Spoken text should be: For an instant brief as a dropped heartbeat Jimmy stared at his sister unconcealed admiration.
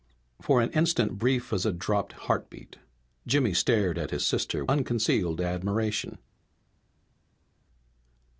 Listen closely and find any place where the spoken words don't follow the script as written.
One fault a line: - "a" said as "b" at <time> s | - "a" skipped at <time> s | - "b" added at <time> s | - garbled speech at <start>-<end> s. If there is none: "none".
none